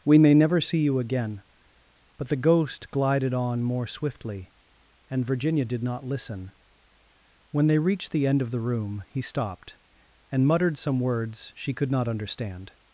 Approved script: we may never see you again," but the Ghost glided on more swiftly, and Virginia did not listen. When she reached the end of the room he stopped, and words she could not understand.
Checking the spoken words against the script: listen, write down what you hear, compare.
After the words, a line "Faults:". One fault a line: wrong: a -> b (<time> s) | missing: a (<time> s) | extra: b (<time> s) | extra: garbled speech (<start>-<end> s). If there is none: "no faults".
we may never see you again," but the Ghost glided on more swiftly, and Virginia did not listen. When they reached the end of the room he stopped, and muttered some words she could not understand.
Faults:
wrong: she -> they (7.7 s)
extra: muttered some (10.5 s)